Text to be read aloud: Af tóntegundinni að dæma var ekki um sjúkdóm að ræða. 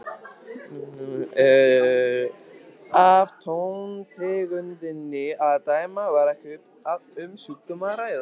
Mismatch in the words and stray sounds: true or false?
false